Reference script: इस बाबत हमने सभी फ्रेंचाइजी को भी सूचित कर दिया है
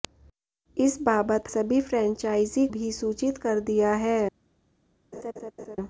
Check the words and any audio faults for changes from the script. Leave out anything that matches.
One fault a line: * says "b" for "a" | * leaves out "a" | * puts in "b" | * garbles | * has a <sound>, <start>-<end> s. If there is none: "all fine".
* leaves out "हमने"
* leaves out "को"
* has a laugh, 5.1-5.8 s